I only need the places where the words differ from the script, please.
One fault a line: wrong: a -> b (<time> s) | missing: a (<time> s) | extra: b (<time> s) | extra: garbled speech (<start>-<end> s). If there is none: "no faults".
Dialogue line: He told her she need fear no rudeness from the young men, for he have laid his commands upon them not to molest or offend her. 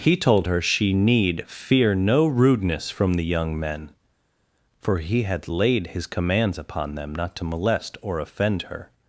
wrong: have -> had (5.2 s)